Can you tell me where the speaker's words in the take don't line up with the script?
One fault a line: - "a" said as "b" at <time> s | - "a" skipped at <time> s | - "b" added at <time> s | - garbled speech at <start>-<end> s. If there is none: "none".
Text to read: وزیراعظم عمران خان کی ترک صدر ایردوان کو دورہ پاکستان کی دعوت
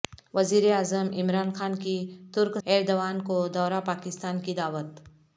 - "صدر" skipped at 2.6 s